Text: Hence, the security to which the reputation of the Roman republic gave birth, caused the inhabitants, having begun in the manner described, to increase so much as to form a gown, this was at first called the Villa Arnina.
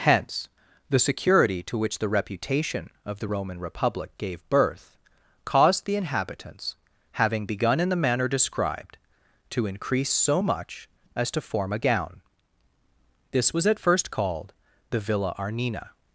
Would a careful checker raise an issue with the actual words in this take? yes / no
no